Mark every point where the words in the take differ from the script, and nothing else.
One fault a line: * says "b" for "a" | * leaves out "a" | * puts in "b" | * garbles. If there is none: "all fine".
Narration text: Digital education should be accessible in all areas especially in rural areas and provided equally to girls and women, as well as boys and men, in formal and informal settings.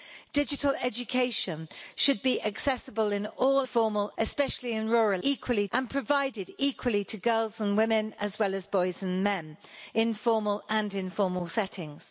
* says "formal" for "areas"
* says "equally" for "areas"